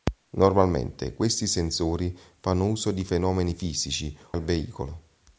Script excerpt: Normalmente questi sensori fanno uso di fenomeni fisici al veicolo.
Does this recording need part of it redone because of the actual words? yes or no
no